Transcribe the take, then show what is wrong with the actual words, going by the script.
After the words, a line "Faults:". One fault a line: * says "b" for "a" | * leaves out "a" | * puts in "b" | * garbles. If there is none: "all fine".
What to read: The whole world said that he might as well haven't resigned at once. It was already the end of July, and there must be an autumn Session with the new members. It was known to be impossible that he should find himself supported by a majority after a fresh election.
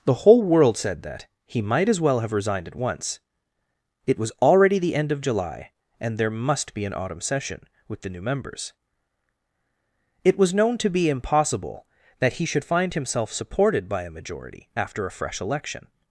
The whole world said that he might as well have resigned at once. It was already the end of July, and there must be an autumn Session with the new members. It was known to be impossible that he should find himself supported by a majority after a fresh election.
Faults:
* says "have" for "haven't"